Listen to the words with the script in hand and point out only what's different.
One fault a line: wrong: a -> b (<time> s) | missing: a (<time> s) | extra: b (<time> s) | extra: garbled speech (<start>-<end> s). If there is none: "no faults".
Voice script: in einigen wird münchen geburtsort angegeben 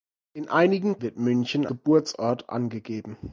no faults